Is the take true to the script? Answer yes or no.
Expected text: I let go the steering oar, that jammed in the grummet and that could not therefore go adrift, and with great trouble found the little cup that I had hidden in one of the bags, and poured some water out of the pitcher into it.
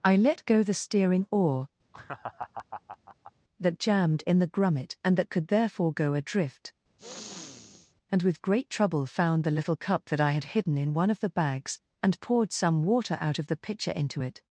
no